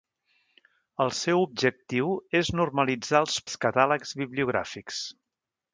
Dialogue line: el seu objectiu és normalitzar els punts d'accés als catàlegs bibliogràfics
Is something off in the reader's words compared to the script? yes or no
yes